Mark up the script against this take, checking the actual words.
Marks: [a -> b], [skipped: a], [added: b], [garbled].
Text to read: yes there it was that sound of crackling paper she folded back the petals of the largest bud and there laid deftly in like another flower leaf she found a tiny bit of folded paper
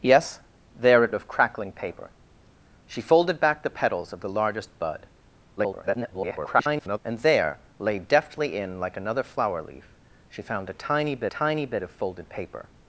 yes there it [skipped: was that sound] of crackling paper she folded back the petals of the largest bud [garbled] and there laid deftly in like another flower leaf she found a tiny bit [added: tiny bit] of folded paper